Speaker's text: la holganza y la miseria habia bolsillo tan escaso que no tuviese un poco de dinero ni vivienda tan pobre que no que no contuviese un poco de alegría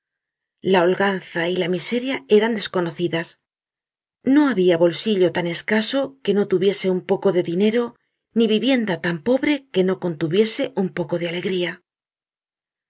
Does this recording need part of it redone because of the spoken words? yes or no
yes